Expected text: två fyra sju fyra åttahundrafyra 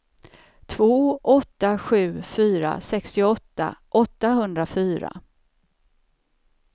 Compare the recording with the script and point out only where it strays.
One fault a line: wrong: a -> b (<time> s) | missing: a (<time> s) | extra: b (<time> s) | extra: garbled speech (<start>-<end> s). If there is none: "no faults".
wrong: fyra -> åtta (1.2 s)
extra: sextioåtta (2.8 s)